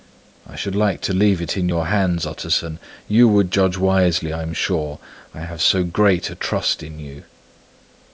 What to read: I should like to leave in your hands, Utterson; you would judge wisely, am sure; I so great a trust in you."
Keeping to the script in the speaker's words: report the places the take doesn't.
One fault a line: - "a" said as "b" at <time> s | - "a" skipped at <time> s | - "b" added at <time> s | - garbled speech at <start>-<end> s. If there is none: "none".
- "it" added at 1.4 s
- "I" added at 4.3 s
- "have" added at 5.4 s